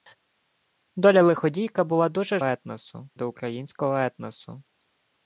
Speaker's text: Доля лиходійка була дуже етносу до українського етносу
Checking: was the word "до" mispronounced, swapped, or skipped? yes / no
no